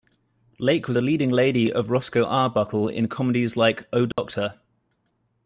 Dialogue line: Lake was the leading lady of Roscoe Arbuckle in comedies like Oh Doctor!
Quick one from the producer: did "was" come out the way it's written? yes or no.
yes